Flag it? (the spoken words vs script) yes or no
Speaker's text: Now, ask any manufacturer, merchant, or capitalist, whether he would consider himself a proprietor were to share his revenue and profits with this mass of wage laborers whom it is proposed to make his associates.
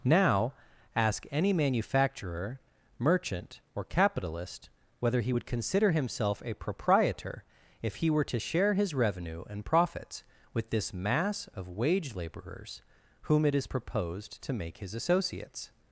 yes